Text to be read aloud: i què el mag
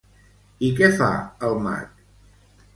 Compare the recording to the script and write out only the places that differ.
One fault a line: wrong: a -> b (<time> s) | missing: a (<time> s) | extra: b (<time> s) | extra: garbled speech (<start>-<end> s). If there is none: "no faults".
extra: fa (1.0 s)